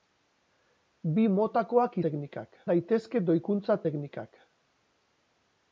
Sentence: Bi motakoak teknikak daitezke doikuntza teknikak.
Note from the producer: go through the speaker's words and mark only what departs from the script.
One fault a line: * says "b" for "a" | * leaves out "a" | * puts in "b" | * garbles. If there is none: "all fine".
all fine